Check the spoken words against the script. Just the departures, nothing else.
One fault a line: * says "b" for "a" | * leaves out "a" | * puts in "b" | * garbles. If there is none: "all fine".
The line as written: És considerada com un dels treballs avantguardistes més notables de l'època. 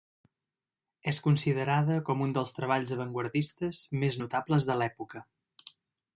all fine